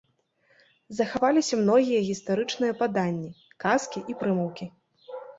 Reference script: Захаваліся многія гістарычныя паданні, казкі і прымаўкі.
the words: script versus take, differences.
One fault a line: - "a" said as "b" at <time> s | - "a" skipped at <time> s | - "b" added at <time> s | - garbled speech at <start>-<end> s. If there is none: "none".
none